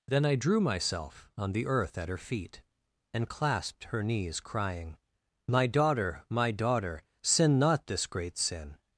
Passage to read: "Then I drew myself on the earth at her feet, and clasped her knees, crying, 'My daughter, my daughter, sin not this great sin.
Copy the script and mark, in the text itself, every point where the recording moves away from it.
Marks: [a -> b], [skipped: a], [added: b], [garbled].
"Then I drew myself on the earth at her feet, and clasped her knees, crying, 'My daughter, my daughter, sin not this great sin.